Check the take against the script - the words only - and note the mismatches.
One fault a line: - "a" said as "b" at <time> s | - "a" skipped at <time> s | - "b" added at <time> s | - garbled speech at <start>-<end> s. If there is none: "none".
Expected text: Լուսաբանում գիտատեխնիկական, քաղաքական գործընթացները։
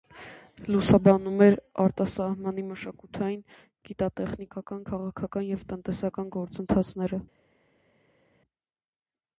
- "էր արտասահմանի մշակութային" added at 1.5 s
- "և տնտեսական" added at 5.5 s